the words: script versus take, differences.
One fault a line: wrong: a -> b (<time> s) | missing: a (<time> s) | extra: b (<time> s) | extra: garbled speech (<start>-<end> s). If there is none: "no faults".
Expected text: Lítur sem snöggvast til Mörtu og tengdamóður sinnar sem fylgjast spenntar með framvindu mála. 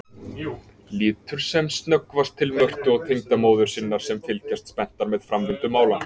no faults